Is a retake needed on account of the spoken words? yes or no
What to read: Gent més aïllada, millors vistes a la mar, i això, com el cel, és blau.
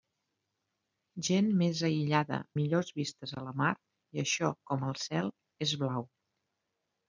no